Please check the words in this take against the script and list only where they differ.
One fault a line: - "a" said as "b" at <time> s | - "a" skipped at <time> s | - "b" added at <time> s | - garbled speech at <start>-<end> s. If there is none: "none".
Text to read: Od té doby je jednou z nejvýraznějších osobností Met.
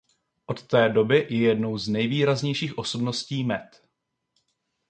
none